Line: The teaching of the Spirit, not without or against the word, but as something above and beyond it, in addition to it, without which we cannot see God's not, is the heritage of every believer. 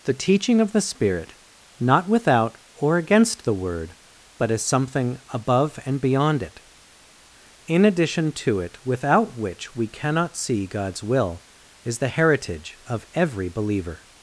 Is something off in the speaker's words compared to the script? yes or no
yes